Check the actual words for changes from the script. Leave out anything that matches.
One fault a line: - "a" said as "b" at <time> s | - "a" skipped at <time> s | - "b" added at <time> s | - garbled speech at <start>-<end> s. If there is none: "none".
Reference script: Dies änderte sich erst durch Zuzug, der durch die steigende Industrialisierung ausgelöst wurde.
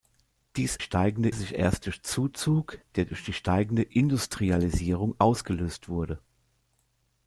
- "änderte" said as "steigende" at 0.8 s